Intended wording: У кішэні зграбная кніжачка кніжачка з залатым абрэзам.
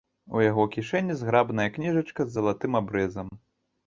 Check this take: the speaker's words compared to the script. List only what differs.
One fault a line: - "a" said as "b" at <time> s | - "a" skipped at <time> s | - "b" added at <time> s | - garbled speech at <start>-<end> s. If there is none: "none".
- "яго" added at 0.4 s
- "кніжачка" skipped at 2.2 s